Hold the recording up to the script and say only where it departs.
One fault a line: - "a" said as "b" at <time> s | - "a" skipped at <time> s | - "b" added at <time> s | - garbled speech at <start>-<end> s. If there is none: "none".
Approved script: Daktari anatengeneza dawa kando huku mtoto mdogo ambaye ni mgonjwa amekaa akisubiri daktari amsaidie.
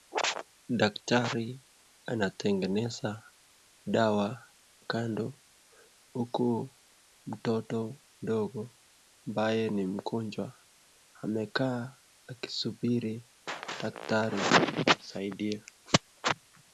none